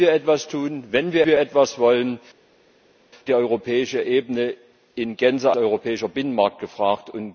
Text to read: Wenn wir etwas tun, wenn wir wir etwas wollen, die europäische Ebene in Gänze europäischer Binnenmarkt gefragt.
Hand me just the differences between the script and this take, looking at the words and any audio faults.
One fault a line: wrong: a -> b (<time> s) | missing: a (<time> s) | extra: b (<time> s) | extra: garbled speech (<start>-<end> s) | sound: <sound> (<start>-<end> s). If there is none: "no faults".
no faults